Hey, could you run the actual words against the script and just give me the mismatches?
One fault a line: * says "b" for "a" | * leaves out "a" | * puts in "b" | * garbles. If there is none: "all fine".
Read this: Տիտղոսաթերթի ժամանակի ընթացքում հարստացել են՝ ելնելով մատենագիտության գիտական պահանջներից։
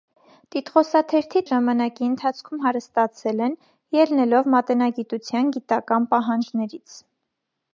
all fine